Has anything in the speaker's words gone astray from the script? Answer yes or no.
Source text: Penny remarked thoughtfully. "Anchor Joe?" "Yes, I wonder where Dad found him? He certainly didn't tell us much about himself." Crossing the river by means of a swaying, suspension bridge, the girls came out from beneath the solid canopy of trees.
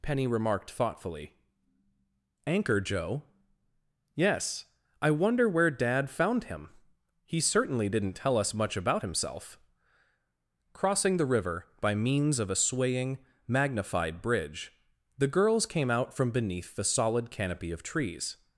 yes